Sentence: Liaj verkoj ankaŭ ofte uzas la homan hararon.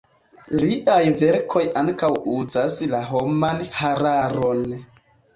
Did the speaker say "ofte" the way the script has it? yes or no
no